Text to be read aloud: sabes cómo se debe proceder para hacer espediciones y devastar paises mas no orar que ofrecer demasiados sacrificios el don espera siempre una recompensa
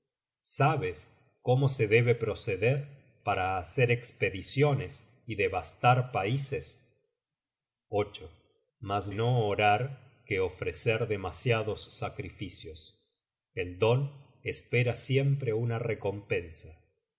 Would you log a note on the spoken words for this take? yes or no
no